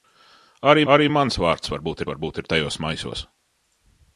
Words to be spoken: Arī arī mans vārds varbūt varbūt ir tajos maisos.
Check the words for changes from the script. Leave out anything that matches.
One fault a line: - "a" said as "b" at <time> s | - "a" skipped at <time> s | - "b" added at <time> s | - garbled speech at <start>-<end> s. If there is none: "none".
none